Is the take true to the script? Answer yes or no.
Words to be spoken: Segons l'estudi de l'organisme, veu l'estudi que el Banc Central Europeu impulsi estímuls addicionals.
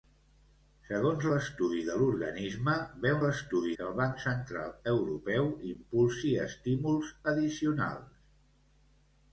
yes